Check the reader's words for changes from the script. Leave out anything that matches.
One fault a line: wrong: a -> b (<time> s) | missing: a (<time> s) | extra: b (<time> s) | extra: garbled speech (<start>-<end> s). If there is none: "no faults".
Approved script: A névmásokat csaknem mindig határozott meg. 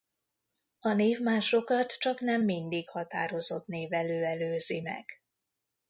extra: névelő előzi (3.7 s)